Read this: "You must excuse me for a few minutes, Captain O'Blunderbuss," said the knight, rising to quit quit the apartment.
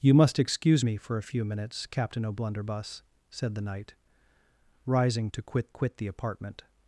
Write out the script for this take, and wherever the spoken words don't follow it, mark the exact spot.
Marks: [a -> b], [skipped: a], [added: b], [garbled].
"You must excuse me for a few minutes, Captain O'Blunderbuss," said the knight, rising to quit quit the apartment.